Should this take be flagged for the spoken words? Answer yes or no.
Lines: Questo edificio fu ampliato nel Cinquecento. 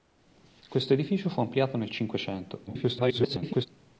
yes